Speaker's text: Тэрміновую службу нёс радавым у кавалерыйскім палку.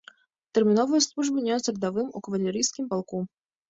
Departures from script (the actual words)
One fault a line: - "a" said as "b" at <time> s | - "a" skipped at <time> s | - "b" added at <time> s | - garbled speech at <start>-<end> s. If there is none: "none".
none